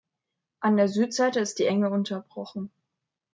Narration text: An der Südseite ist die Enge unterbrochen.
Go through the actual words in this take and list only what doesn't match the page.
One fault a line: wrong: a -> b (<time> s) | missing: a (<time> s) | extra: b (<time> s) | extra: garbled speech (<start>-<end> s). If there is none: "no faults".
no faults